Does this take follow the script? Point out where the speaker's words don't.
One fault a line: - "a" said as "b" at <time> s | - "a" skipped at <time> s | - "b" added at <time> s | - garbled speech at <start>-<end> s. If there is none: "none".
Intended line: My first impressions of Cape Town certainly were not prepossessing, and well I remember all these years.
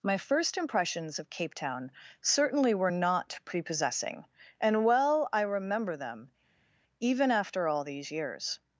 - "them even after" added at 6.0 s